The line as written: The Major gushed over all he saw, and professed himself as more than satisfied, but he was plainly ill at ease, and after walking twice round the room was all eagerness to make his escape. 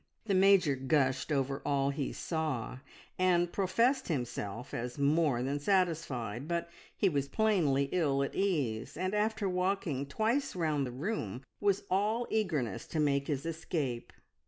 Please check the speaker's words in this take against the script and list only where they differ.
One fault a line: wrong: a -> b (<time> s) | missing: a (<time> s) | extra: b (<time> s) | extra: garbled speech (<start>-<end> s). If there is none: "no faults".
no faults